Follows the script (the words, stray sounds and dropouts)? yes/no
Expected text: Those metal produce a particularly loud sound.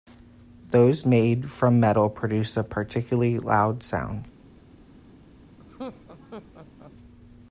no